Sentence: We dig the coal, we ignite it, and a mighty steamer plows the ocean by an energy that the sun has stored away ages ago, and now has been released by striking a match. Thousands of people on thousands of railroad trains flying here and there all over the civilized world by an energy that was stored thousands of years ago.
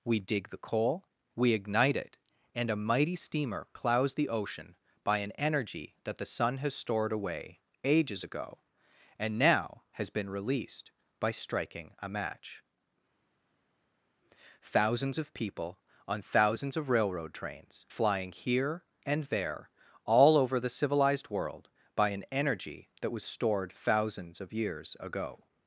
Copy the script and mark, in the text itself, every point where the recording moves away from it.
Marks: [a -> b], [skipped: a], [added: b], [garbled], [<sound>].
We dig the coal, we ignite it, and a mighty steamer plows the ocean by an energy that the sun has stored away ages ago, and now has been released by striking a match. Thousands of people on thousands of railroad trains flying here and there all over the civilized world by an energy that was stored thousands of years ago.